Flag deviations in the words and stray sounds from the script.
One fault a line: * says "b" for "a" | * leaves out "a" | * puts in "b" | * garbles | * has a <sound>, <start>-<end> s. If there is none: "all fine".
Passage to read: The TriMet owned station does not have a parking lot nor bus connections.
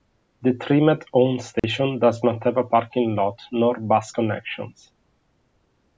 * has a dropout, 1.6-1.6 s